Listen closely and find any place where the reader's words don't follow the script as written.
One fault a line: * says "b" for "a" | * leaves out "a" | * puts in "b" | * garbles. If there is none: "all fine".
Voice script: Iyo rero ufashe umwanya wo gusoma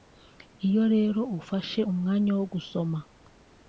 all fine